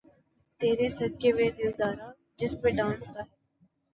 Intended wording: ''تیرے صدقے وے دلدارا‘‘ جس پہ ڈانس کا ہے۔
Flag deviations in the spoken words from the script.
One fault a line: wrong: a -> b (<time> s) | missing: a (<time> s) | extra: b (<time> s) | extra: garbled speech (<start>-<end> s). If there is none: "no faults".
no faults